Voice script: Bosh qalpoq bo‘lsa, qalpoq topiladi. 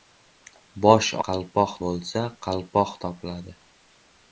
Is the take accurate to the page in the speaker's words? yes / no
yes